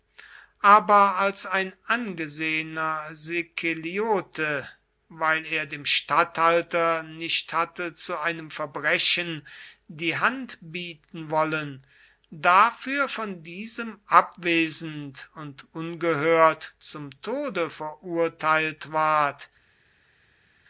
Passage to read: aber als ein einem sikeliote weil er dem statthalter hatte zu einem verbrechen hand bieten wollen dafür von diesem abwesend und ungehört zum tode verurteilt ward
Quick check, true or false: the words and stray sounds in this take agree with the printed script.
false